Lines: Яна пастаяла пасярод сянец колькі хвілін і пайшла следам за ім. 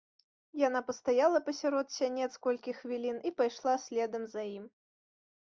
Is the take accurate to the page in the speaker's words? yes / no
yes